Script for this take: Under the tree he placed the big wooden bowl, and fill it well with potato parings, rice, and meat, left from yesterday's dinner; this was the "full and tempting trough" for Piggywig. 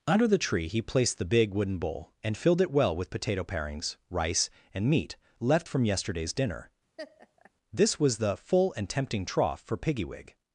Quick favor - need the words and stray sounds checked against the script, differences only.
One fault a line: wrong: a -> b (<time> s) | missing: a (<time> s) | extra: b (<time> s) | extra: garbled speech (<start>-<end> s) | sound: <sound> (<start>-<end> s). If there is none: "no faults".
wrong: fill -> filled (2.4 s)
sound: laugh (7.0-7.5 s)